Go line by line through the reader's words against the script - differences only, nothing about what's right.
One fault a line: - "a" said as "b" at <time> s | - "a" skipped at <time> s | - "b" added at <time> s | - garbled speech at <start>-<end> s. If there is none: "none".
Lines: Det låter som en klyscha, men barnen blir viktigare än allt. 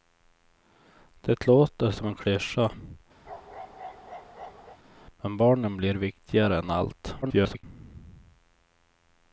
- garbled speech at 7.2-7.6 s